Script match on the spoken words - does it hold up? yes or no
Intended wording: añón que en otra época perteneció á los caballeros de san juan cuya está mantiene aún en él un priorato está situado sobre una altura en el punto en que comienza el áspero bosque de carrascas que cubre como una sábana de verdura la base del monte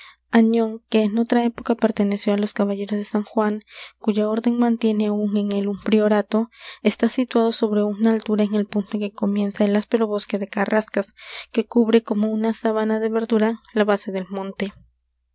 no